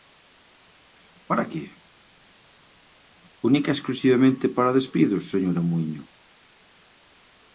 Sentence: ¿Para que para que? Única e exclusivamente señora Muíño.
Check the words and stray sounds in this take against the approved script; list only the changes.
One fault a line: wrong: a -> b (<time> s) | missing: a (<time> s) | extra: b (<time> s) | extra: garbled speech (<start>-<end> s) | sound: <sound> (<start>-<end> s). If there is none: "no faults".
missing: para que (1.6 s)
extra: para despidos (4.6 s)